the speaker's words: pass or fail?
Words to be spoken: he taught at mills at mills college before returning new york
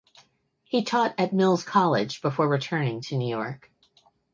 fail